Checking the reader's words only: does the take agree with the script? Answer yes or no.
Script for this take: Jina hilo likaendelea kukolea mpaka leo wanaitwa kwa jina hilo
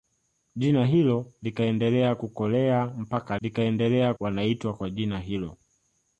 no